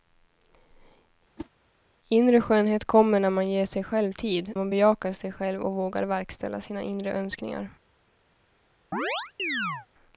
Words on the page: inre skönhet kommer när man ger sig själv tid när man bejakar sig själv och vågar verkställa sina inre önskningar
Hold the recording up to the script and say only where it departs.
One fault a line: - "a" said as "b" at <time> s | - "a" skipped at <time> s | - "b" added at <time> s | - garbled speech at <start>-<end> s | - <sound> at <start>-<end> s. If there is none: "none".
- whoosh at 1.4-1.5 s
- "när" skipped at 4.5 s
- chirp at 8.9-9.9 s